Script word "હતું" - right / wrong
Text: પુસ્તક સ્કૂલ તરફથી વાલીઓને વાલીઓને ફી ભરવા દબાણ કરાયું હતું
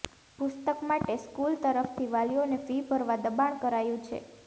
wrong